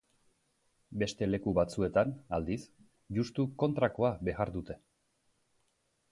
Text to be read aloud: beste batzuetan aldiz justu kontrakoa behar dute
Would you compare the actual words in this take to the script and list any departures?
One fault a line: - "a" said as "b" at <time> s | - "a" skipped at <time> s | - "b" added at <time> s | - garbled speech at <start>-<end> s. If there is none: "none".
- "leku" added at 1.3 s